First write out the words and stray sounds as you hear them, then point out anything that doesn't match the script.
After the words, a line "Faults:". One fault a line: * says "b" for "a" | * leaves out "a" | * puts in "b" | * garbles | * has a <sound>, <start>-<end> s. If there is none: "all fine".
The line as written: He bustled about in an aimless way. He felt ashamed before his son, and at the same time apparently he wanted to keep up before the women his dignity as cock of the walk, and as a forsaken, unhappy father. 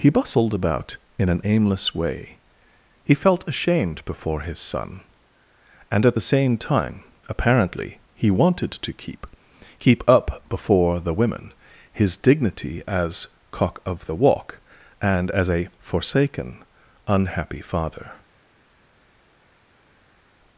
He bustled about in an aimless way. He felt ashamed before his son, and at the same time apparently he wanted to keep keep up before the women his dignity as cock of the walk, and as a forsaken, unhappy father.
Faults:
* puts in "keep"